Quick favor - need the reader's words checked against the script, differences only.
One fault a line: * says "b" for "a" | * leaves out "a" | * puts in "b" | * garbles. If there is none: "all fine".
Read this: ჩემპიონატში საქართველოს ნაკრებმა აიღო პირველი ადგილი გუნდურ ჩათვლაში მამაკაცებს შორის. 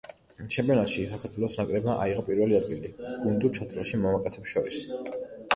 all fine